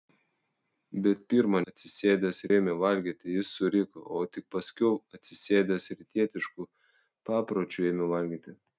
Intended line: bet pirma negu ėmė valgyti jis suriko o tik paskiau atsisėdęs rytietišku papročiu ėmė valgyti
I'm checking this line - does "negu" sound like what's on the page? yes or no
no